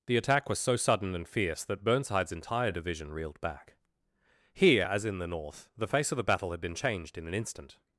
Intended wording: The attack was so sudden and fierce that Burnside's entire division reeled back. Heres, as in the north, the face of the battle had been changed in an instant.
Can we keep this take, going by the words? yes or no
no